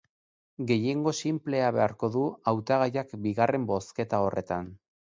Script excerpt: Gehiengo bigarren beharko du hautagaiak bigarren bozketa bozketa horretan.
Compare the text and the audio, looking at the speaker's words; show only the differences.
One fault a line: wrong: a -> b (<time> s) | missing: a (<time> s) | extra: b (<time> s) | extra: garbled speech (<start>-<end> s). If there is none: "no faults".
wrong: bigarren -> sinplea (1.2 s)
missing: bozketa (4.3 s)